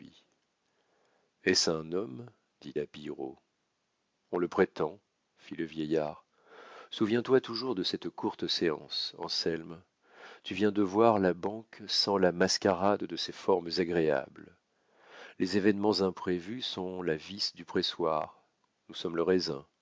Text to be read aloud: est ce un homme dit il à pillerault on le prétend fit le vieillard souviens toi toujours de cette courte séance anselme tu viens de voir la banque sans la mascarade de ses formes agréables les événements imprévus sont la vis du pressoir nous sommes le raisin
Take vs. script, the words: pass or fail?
fail